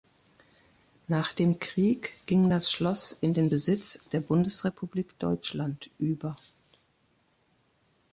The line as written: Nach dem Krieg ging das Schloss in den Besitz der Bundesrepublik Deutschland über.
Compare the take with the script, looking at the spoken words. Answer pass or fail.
pass